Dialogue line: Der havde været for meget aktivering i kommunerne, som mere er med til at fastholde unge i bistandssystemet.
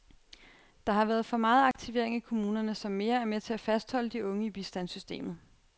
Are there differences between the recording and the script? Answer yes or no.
yes